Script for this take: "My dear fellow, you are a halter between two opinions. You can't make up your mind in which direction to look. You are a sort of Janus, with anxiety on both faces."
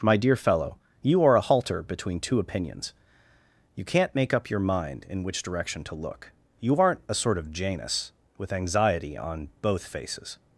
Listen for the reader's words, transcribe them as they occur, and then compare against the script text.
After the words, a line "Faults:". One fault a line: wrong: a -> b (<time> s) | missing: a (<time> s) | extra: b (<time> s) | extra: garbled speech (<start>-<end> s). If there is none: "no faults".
"My dear fellow, you are a halter between two opinions. You can't make up your mind in which direction to look. You aren't a sort of Janus, with anxiety on both faces."
Faults:
wrong: are -> aren't (6.8 s)